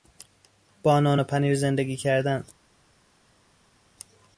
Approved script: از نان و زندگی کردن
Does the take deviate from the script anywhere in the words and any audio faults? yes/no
yes